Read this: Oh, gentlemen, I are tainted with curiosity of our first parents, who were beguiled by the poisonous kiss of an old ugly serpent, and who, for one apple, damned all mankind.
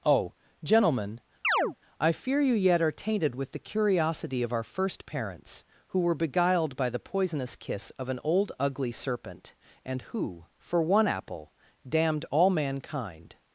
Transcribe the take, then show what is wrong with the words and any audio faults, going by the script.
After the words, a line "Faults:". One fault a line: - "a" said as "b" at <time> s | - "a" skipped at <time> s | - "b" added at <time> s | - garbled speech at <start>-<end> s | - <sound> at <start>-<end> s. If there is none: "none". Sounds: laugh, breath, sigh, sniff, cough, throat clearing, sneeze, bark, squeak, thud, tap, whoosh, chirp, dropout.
Oh, gentlemen, I fear you yet are tainted with the curiosity of our first parents, who were beguiled by the poisonous kiss of an old ugly serpent, and who, for one apple, damned all mankind.
Faults:
- chirp at 1.4-1.8 s
- "fear you yet" added at 2.1 s
- "the" added at 3.5 s